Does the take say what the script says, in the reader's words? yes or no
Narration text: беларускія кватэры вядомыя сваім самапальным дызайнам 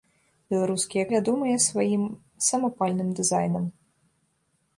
no